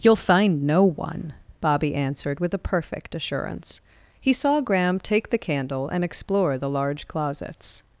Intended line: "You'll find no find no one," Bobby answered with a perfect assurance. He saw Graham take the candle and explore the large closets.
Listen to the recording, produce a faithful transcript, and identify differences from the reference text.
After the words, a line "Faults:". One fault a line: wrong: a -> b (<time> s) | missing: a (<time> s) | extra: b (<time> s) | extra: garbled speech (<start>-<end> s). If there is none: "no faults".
"You'll find no one," Bobby answered with a perfect assurance. He saw Graham take the candle and explore the large closets.
Faults:
missing: find no (0.8 s)